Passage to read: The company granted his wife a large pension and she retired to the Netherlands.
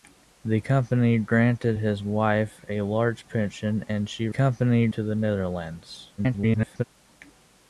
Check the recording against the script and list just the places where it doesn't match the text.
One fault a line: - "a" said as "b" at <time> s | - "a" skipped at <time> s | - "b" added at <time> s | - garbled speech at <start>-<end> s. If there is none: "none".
- "retired" said as "company" at 4.3 s
- garbled speech at 6.2-6.8 s